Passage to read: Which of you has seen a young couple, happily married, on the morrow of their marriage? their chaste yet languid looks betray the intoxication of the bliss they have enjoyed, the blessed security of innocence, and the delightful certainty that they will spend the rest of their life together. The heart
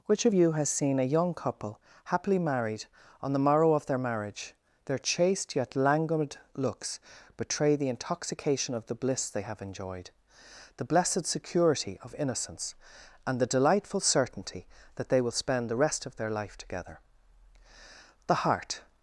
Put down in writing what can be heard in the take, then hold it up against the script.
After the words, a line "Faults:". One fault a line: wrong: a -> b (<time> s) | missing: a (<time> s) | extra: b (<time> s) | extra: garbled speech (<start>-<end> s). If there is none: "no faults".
Which of you has seen a young couple, happily married, on the morrow of their marriage? their chaste yet languid looks betray the intoxication of the bliss they have enjoyed, the blessed security of innocence, and the delightful certainty that they will spend the rest of their life together. The heart
Faults:
no faults